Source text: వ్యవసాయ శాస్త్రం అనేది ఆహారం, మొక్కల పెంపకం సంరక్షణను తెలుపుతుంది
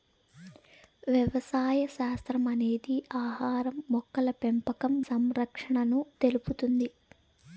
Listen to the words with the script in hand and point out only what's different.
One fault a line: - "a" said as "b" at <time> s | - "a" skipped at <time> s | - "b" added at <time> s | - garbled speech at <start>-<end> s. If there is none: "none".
none